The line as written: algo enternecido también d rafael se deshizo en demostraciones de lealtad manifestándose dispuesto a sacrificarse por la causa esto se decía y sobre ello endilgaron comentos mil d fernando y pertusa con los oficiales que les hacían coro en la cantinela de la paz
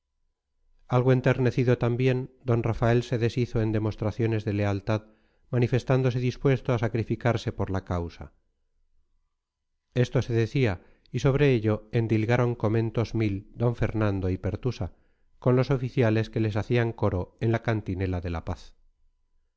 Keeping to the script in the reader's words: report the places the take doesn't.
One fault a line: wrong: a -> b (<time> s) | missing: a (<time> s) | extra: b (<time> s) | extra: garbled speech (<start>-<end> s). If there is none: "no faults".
no faults